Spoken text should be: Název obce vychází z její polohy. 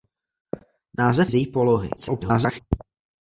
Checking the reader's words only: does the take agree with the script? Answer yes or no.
no